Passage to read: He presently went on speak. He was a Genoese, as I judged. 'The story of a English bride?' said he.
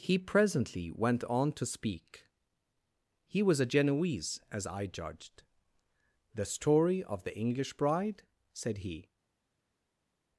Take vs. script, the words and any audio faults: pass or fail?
fail